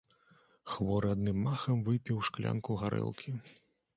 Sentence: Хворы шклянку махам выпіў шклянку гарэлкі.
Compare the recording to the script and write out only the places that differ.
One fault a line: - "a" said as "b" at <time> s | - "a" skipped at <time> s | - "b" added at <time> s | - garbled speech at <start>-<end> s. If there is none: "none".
- "шклянку" said as "адным" at 1.1 s